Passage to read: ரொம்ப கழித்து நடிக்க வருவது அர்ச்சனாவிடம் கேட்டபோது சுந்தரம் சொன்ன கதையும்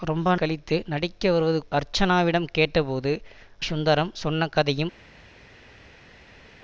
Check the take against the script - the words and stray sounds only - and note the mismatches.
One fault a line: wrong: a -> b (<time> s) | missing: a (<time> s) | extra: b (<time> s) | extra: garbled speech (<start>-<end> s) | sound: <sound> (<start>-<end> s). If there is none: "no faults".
no faults